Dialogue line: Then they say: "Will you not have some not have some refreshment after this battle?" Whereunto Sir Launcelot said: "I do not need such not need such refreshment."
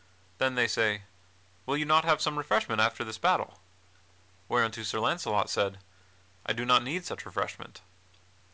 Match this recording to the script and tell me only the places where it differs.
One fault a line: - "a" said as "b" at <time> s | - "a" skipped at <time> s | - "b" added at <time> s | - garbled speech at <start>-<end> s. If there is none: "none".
- "not have some" skipped at 2.4 s
- "not need such" skipped at 7.3 s